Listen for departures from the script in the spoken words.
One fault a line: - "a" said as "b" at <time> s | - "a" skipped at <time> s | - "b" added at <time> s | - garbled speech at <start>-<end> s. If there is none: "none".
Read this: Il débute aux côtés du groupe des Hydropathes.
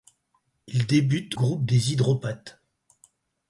- "aux côtés du" skipped at 1.4 s